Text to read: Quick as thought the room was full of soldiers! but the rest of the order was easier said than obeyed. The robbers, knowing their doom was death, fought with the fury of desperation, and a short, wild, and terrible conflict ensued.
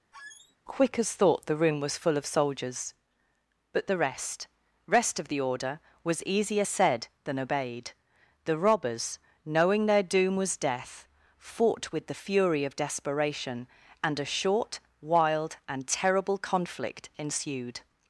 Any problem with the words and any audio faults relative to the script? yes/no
yes